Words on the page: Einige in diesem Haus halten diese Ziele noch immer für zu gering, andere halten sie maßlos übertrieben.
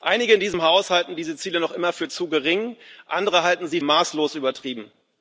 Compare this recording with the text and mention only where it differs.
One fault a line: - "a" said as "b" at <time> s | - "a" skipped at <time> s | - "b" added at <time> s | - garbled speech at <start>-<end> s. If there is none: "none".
none